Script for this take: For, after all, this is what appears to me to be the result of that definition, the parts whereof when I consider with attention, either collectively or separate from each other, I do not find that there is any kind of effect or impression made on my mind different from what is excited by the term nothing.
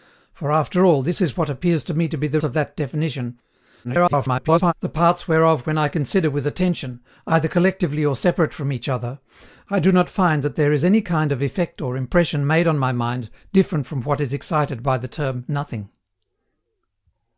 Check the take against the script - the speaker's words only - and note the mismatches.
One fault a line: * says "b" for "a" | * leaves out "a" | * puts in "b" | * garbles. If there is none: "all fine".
* leaves out "result"
* garbles